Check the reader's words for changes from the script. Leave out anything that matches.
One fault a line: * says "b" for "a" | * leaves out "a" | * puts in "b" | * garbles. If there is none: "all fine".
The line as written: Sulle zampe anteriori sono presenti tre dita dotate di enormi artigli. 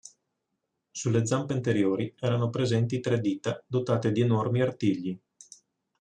* says "erano" for "sono"